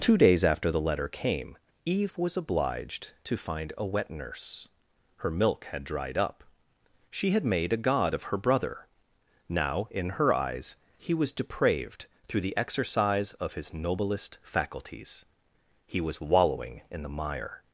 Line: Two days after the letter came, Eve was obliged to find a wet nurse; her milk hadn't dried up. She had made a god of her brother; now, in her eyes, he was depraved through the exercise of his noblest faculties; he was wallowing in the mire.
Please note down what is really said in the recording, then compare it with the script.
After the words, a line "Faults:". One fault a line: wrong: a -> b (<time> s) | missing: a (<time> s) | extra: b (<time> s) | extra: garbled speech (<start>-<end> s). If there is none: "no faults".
Two days after the letter came, Eve was obliged to find a wet nurse; her milk had dried up. She had made a god of her brother; now, in her eyes, he was depraved through the exercise of his noblest faculties; he was wallowing in the mire.
Faults:
wrong: hadn't -> had (5.7 s)